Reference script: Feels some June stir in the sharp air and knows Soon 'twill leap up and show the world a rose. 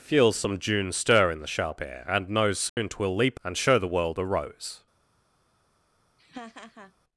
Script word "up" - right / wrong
wrong